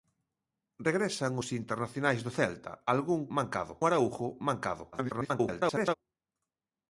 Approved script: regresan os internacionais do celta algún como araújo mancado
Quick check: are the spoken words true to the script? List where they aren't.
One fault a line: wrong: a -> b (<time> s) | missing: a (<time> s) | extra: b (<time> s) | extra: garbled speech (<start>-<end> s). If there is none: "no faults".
wrong: como -> mancado (3.4 s)
extra: garbled speech (4.9-5.9 s)